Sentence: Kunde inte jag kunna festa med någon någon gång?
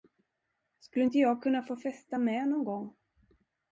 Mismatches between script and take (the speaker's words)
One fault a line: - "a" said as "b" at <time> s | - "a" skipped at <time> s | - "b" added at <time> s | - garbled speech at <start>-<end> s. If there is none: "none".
- "Kunde" said as "Skulle" at 0.8 s
- "få" added at 1.6 s
- "någon" skipped at 2.6 s